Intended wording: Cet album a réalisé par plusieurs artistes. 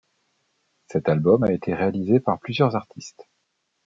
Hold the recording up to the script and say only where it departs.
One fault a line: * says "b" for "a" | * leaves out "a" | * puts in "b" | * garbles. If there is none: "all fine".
* puts in "été"